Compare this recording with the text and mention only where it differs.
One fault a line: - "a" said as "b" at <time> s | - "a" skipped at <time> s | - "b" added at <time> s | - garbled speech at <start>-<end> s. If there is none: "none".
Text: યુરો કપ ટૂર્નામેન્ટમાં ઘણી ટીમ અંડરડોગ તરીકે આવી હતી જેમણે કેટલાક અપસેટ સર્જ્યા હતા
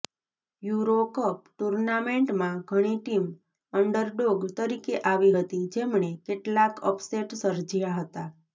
none